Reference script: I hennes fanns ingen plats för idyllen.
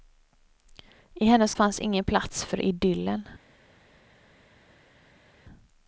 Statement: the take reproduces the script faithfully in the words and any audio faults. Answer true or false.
true